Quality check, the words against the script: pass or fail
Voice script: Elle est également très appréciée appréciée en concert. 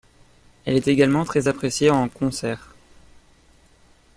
fail